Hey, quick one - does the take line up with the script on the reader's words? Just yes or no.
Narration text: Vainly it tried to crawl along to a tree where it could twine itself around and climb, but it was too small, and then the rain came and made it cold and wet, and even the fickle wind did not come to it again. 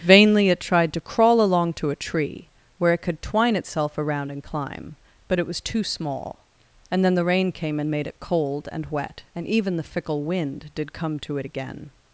no